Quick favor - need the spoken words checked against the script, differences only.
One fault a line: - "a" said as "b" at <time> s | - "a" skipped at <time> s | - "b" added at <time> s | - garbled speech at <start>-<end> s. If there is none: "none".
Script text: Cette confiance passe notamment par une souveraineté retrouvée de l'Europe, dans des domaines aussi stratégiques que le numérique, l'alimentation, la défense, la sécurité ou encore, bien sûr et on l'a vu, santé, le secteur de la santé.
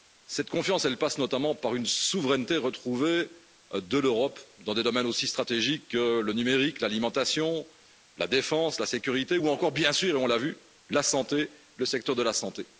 - "la" added at 10.9 s